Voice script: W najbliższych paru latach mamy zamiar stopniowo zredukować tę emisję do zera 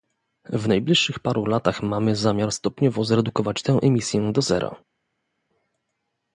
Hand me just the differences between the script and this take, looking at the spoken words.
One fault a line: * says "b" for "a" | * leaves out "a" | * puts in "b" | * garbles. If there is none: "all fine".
all fine